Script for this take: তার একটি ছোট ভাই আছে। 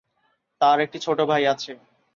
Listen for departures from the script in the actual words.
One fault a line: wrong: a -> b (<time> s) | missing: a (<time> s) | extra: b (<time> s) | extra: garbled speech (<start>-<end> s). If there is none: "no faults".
no faults